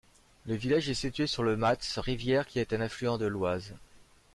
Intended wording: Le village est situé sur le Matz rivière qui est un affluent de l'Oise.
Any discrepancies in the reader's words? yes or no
no